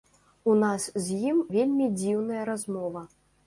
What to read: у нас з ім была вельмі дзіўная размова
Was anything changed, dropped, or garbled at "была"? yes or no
yes